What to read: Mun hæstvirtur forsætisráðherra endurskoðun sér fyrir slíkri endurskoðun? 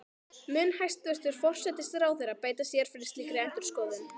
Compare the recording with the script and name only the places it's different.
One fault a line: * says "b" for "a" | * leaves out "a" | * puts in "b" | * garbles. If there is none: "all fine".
* says "beita" for "endurskoðun"